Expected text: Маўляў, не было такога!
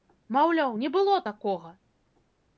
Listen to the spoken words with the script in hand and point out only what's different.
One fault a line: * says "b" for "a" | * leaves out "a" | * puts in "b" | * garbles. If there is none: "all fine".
all fine